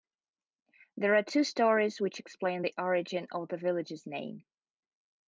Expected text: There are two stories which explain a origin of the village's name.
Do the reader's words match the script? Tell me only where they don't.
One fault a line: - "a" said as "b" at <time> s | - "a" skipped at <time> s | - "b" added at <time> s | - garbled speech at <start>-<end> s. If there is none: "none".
- "a" said as "the" at 2.6 s